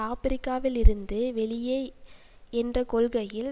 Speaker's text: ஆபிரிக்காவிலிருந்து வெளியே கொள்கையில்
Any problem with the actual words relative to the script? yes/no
yes